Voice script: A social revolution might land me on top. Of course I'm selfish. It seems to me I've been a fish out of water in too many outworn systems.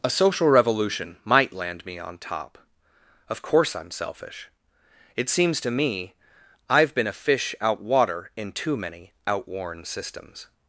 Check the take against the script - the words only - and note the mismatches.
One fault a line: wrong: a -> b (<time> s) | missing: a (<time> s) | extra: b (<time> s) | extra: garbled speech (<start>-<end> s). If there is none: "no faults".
missing: of (7.8 s)